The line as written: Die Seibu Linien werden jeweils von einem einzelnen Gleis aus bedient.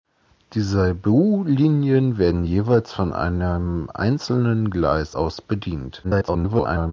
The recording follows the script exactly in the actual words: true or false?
false